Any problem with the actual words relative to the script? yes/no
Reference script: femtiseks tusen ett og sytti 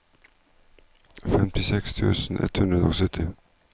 yes